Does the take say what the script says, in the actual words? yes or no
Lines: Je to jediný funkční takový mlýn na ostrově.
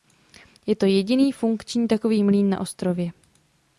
yes